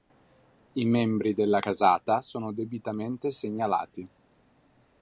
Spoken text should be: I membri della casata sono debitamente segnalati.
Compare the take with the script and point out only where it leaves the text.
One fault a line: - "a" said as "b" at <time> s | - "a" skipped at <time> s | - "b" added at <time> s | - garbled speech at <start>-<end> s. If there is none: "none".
none